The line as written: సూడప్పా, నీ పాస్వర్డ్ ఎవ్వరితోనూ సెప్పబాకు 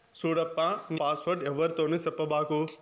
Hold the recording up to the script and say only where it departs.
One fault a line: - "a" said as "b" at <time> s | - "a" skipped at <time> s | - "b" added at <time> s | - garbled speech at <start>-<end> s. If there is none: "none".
none